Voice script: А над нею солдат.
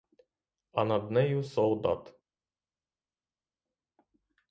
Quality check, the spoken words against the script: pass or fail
pass